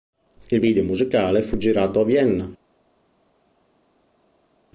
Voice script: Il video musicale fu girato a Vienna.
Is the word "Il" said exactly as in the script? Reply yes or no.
yes